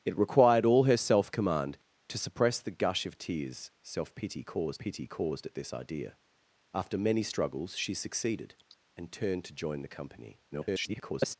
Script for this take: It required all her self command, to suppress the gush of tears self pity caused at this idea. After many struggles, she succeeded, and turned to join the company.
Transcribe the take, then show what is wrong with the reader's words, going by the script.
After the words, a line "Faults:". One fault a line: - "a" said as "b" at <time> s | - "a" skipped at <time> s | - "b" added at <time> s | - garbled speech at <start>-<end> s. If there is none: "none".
It required all her self command, to suppress the gush of tears self pity caused pity caused at this idea. After many struggles, she succeeded, and turned to join the company. [garbled]
Faults:
- "pity caused" added at 4.8 s
- garbled speech at 10.5-11.4 s